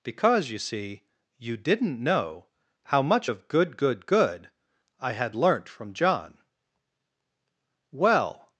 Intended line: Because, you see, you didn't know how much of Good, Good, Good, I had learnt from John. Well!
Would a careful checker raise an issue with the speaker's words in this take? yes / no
no